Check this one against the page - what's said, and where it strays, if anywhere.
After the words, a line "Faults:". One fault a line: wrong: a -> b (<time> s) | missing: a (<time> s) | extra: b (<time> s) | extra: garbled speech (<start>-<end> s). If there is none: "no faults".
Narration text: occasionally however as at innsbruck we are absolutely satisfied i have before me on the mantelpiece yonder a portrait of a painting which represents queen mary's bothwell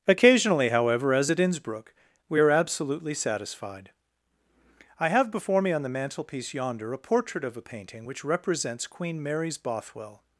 occasionally however as at innsbruck we are absolutely satisfied i have before me on the mantelpiece yonder a portrait of a painting which represents queen mary's bothwell
Faults:
no faults